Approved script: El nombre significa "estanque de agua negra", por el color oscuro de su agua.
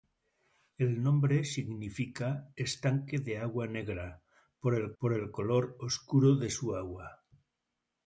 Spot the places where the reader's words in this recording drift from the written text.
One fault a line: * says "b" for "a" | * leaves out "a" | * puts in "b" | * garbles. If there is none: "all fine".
* puts in "por el"